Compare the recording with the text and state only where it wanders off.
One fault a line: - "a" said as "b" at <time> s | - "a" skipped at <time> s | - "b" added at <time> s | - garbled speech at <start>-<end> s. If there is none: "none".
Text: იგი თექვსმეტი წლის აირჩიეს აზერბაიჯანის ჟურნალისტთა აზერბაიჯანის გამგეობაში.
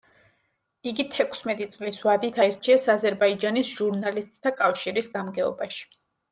- "ვადით" added at 2.1 s
- "აზერბაიჯანის" said as "კავშირის" at 4.6 s